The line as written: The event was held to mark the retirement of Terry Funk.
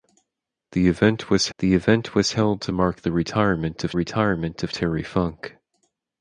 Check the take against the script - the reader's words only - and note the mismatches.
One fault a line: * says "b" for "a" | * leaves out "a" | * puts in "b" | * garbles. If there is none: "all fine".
* puts in "the event was"
* puts in "retirement of"